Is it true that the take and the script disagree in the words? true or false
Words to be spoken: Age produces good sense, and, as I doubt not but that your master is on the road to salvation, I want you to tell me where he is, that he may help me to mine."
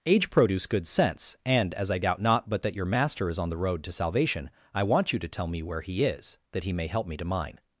true